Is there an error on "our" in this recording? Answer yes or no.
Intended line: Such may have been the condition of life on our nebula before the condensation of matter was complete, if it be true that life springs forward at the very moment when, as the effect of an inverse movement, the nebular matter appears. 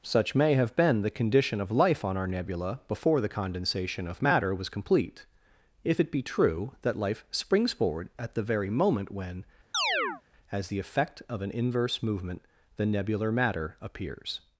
no